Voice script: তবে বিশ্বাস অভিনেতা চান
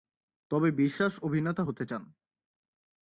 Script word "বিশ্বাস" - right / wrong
right